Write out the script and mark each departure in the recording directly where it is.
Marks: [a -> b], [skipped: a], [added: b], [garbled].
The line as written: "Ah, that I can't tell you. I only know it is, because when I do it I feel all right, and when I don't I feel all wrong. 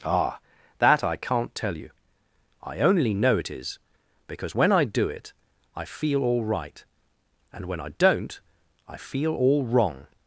"Ah, that I can't tell you. I only know it is, because when I do it I feel all right, and when I don't I feel all wrong.